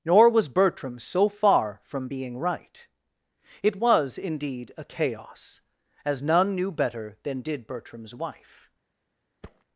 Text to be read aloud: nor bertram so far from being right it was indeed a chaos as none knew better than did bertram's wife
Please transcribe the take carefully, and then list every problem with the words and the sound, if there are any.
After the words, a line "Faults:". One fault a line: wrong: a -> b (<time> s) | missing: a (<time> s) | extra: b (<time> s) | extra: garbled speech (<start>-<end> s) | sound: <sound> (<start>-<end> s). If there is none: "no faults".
nor was bertram so far from being right it was indeed a chaos as none knew better than did bertram's wife
Faults:
extra: was (0.3 s)
sound: thud (9.4-9.6 s)